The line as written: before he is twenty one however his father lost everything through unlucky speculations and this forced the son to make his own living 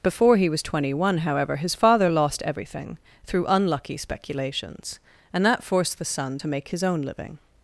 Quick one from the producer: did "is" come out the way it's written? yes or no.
no